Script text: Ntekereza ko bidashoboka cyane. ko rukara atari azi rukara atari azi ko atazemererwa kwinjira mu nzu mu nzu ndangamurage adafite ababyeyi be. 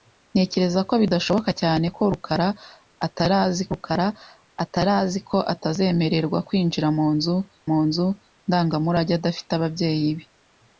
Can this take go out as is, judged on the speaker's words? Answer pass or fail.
pass